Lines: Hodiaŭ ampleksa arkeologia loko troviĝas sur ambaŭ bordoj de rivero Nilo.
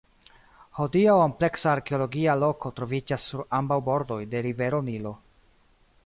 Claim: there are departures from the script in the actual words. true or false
false